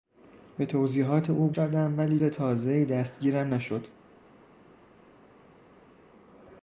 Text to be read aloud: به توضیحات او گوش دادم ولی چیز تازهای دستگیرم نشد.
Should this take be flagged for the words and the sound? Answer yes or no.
yes